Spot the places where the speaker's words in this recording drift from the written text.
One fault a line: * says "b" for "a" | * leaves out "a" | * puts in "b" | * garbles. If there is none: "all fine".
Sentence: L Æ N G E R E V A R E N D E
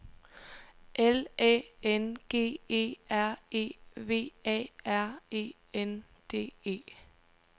all fine